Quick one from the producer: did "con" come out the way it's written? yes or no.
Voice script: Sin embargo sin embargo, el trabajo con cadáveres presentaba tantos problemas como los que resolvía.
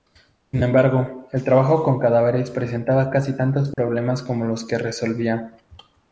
yes